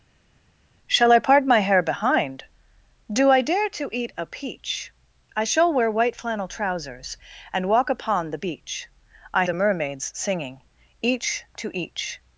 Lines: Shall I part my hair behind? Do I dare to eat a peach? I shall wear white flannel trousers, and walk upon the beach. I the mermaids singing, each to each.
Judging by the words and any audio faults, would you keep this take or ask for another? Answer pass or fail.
pass